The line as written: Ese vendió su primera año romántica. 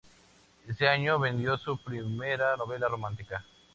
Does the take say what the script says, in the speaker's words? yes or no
no